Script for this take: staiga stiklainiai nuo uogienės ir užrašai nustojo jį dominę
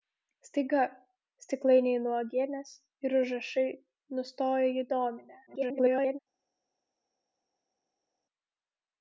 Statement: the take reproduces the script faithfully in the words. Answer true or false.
false